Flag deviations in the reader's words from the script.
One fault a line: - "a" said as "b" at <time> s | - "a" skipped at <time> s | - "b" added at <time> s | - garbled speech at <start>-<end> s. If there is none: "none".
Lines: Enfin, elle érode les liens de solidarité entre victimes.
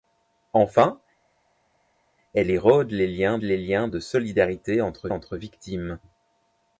- "les liens" added at 3.4 s
- "entre" added at 5.1 s